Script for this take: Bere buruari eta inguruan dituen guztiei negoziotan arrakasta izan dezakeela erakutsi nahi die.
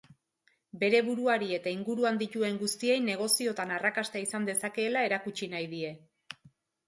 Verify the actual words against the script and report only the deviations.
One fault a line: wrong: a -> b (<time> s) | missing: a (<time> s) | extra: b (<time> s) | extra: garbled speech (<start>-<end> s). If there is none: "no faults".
no faults